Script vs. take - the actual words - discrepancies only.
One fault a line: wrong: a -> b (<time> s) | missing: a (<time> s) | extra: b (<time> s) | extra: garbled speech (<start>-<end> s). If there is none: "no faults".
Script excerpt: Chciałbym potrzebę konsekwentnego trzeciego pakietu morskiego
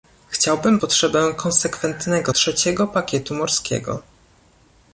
no faults